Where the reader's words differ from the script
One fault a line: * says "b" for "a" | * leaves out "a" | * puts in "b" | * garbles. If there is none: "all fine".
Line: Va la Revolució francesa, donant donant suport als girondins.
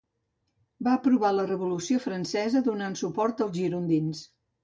* puts in "aprovar"
* leaves out "donant"